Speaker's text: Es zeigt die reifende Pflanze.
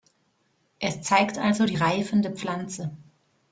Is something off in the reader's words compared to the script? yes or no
yes